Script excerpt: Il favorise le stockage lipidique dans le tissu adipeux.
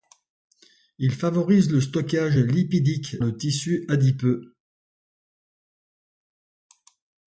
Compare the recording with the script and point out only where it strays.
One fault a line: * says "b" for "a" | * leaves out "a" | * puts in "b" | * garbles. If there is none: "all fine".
* leaves out "dans"